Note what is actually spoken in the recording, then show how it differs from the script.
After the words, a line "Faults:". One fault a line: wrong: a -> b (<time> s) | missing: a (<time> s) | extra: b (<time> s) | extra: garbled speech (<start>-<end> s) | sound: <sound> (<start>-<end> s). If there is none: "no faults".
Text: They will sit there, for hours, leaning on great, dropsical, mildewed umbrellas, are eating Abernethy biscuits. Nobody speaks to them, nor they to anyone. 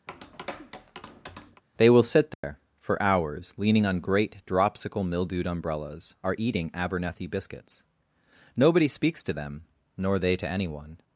They will sit there, for hours, leaning on great, dropsical, mildewed umbrellas, are eating Abernethy biscuits. Nobody speaks to them, nor they to anyone.
Faults:
sound: tap (0.1-1.6 s)
sound: dropout (2.3-2.4 s)